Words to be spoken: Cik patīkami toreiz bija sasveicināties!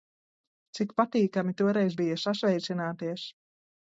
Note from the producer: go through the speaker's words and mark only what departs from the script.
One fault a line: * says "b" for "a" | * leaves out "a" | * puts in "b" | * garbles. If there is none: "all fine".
all fine